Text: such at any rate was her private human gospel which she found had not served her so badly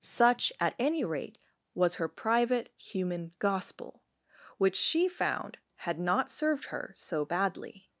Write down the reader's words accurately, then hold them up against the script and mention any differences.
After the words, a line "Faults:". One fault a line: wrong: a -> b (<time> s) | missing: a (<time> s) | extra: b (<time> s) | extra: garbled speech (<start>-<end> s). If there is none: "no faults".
such at any rate was her private human gospel which she found had not served her so badly
Faults:
no faults